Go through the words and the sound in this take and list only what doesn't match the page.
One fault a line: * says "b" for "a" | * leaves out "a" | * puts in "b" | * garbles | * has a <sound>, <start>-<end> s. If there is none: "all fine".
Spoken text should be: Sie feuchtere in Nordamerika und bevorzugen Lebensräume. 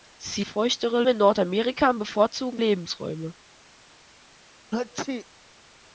* has a sneeze, 4.7-5.2 s